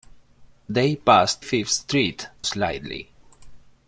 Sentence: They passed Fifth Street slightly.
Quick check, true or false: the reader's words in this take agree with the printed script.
true